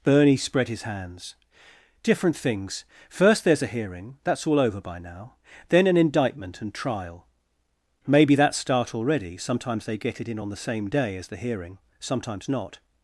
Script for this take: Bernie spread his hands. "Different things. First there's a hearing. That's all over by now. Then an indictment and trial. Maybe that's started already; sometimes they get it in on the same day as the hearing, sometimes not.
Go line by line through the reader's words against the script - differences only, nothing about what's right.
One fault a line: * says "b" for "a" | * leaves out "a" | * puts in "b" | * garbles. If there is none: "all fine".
* says "start" for "started"